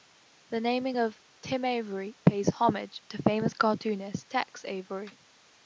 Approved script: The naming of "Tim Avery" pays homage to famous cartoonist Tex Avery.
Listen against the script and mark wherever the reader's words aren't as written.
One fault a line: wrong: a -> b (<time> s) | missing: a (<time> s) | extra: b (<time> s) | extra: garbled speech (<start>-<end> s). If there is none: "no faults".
no faults